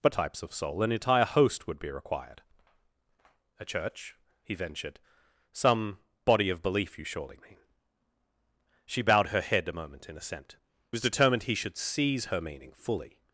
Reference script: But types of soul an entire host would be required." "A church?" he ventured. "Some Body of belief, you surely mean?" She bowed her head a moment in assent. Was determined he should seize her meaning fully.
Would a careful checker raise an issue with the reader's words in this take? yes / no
no